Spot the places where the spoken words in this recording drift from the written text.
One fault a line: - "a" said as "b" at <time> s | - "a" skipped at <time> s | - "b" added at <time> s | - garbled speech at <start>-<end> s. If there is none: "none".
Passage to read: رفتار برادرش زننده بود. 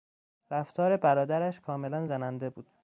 - "کاملا" added at 1.6 s